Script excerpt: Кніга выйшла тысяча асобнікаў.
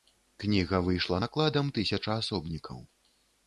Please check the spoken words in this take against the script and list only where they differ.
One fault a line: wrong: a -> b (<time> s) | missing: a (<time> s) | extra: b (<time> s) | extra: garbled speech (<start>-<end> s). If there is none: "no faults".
extra: накладам (1.2 s)